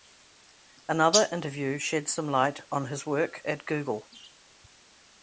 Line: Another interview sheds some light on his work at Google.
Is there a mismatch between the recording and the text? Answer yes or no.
no